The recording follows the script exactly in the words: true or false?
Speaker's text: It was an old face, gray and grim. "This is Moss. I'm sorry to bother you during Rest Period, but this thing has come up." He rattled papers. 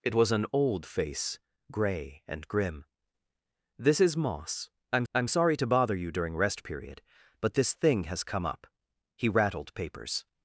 false